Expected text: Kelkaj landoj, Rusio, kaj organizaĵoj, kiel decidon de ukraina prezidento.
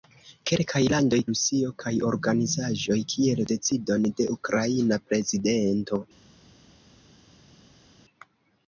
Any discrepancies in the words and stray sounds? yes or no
no